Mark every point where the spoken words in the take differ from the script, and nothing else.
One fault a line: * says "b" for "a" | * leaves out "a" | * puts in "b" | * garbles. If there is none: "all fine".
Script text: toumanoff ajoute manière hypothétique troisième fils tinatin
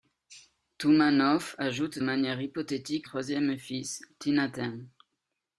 all fine